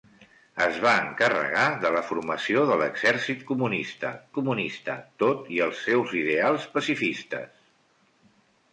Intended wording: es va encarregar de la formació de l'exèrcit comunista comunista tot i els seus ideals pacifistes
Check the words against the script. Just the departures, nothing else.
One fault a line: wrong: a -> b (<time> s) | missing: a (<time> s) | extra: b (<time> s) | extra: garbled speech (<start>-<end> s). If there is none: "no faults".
no faults